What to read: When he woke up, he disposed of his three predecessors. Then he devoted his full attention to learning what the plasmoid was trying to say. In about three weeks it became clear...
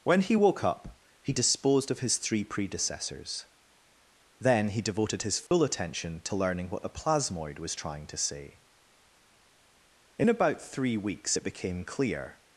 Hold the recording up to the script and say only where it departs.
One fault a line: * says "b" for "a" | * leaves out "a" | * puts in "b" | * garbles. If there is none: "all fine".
all fine